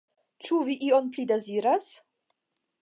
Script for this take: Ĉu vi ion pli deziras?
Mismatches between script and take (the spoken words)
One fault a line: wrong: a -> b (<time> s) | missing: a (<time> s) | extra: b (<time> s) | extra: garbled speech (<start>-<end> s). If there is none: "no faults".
no faults